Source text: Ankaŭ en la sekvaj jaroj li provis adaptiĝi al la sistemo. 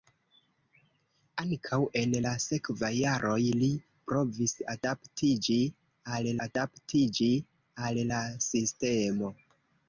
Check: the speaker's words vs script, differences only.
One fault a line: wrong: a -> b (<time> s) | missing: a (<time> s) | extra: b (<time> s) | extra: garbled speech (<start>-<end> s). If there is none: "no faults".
extra: adaptiĝi al (6.5 s)